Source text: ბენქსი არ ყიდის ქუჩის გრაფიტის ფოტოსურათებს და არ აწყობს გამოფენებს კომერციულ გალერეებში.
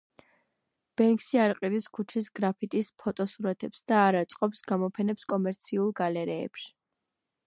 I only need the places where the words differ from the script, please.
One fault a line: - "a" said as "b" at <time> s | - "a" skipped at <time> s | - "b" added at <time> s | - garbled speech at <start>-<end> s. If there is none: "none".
none